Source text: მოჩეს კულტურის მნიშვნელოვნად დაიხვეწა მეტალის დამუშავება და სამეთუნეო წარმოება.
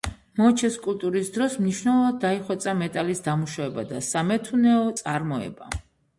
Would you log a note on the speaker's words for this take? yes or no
yes